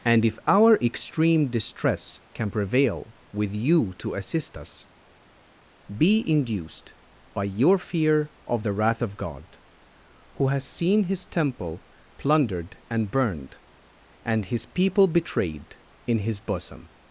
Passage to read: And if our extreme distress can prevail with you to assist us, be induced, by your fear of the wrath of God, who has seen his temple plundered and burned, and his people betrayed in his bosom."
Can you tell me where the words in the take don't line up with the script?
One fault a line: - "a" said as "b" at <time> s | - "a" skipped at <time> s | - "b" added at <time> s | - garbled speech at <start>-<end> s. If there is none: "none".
none